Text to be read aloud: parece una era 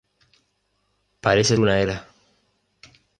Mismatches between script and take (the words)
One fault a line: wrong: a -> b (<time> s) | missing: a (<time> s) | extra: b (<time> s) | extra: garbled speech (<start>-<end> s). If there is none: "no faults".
no faults